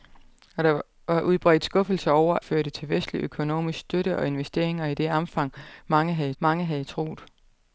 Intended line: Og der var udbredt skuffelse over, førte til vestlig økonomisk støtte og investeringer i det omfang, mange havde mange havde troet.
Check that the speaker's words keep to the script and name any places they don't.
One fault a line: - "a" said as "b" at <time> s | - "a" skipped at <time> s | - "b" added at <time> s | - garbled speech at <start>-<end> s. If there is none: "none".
none